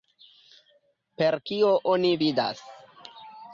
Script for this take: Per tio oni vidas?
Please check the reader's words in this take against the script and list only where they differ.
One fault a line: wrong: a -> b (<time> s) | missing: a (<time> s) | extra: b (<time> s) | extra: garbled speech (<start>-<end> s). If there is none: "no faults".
wrong: tio -> kio (1.5 s)